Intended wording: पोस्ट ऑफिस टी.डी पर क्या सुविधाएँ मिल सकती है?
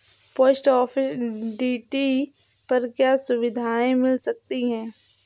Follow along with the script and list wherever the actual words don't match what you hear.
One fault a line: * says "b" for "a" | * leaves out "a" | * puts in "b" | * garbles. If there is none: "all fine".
all fine